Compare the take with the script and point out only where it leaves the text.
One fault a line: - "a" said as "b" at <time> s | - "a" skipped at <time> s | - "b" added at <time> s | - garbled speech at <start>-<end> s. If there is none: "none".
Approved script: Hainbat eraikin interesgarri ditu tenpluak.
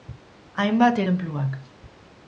- "eraikin interesgarri ditu" skipped at 1.0 s